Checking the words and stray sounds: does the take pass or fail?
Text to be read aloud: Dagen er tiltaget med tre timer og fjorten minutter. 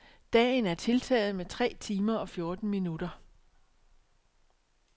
pass